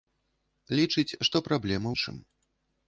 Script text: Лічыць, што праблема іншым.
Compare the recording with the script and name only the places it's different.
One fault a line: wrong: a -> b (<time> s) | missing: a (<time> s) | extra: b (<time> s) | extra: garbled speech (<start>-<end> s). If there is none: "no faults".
no faults